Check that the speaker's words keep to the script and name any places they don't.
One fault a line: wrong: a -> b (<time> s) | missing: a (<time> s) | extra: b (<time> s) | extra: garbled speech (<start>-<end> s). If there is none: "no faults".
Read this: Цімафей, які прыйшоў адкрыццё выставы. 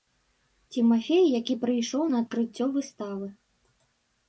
extra: на (2.1 s)